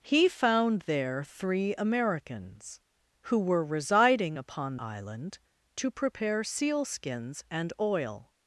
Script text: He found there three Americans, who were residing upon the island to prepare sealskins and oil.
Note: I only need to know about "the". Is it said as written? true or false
false